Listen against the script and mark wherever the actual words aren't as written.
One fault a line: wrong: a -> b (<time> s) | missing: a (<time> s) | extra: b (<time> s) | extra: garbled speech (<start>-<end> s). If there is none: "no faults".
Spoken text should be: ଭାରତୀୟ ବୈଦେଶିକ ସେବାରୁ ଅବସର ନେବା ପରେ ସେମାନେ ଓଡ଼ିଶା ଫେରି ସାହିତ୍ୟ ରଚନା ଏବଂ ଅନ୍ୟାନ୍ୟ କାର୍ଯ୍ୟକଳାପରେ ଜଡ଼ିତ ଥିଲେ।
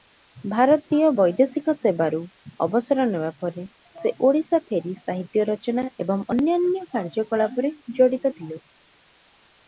wrong: ସେମାନେ -> ସେ (3.9 s)